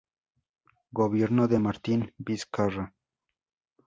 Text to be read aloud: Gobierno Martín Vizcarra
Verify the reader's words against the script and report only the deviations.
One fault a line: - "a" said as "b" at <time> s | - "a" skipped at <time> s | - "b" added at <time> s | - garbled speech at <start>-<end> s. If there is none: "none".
- "de" added at 1.5 s